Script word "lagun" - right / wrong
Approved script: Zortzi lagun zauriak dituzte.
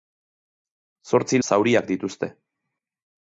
wrong